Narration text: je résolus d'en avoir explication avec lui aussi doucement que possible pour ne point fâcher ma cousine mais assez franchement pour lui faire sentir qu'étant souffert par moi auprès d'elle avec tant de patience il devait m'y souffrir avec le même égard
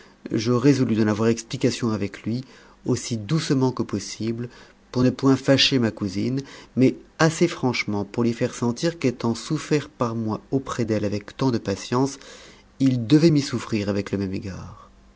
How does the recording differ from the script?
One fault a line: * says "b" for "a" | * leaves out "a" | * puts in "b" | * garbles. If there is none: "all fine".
all fine